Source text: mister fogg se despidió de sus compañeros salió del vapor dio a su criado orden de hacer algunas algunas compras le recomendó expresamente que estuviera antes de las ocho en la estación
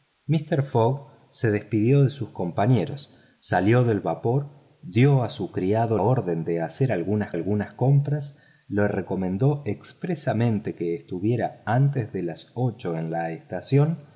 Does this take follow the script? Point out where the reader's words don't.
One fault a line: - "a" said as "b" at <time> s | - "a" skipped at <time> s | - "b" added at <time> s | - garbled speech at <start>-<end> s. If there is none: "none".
none